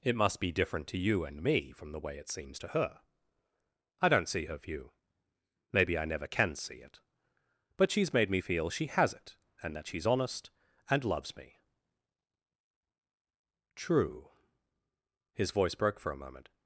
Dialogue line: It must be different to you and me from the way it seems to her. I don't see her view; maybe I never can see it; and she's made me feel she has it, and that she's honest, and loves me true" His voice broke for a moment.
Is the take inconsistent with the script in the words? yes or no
yes